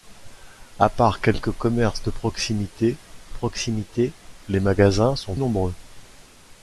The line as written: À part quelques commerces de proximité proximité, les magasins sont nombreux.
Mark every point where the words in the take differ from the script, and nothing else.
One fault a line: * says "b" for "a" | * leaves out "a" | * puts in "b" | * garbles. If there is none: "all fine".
all fine